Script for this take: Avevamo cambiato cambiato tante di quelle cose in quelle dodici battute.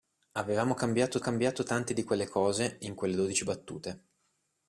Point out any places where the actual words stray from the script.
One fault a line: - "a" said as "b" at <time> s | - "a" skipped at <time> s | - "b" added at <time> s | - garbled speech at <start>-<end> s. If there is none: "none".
none